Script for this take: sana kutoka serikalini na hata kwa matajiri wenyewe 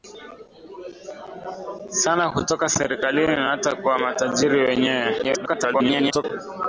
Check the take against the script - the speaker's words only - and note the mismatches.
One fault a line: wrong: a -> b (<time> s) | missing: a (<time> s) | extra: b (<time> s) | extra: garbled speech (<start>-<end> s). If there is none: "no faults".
extra: garbled speech (5.2-6.2 s)